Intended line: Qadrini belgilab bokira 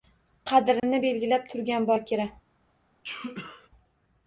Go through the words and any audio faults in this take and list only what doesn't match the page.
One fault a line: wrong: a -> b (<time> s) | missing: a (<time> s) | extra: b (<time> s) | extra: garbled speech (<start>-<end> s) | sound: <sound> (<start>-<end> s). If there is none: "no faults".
sound: dropout (0.8-0.8 s)
extra: turgan (1.5 s)
sound: sneeze (3.0-3.7 s)